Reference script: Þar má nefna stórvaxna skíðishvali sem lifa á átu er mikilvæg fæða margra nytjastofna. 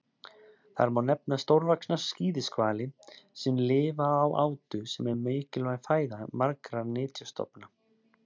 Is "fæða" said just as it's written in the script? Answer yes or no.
yes